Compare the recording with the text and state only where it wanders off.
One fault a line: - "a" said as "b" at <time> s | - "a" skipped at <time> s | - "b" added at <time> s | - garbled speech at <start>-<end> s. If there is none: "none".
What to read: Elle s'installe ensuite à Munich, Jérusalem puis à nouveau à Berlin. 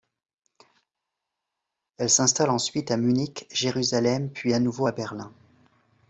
none